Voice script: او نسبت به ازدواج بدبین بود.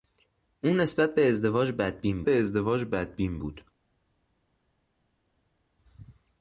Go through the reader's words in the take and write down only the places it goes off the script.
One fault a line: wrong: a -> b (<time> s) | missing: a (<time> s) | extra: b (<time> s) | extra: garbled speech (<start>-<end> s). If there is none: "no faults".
extra: به ازدواج بدبین (2.2 s)